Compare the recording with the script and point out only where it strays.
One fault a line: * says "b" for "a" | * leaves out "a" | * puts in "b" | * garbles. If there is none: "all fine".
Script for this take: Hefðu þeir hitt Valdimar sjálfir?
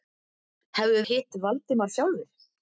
* leaves out "þeir"